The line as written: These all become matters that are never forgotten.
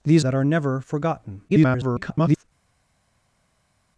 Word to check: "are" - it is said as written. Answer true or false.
true